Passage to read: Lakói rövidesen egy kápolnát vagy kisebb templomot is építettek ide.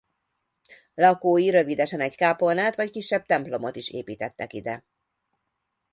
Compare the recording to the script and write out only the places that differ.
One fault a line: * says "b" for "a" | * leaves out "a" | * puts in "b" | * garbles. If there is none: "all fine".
all fine